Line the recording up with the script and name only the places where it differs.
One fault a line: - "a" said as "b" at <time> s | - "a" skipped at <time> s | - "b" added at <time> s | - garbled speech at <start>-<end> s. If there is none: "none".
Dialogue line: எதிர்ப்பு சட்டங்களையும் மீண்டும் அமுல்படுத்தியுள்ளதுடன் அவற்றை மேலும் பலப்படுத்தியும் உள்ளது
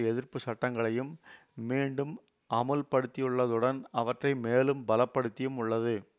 none